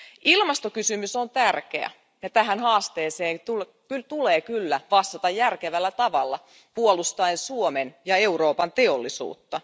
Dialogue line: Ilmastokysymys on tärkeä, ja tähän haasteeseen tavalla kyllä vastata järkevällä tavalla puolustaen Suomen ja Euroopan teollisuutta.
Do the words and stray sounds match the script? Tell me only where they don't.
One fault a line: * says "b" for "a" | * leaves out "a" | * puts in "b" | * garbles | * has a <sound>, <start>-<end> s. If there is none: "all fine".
* says "tulee" for "tavalla"